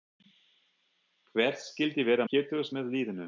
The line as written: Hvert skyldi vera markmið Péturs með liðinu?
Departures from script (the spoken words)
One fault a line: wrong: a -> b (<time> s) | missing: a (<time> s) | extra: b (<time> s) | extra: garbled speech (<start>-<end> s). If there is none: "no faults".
missing: markmið (2.3 s)